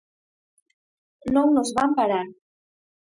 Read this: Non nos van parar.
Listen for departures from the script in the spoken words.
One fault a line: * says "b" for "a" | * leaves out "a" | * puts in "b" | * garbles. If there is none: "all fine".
all fine